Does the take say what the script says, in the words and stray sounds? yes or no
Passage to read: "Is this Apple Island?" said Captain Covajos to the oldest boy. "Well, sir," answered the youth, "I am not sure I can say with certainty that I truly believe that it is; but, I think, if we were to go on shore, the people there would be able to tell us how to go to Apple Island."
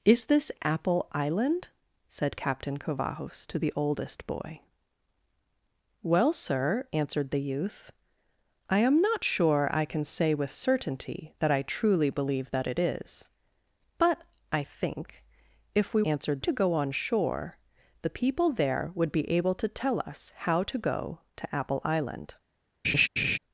no